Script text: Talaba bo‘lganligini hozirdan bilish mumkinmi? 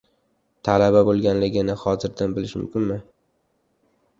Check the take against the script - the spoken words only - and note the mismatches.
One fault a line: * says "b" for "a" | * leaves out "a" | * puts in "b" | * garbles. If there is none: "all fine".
all fine